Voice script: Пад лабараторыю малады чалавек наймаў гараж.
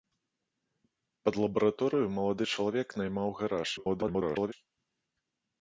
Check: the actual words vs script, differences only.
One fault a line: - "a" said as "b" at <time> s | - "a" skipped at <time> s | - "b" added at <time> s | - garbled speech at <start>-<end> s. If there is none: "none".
- garbled speech at 3.8-4.5 s